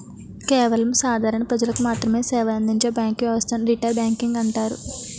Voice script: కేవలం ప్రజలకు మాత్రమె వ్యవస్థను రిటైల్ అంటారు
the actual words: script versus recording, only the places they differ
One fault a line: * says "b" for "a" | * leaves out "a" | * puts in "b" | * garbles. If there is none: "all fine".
* puts in "సాధారణ"
* puts in "సేవలందించే బ్యాంకు"
* puts in "బ్యాంకింగ్"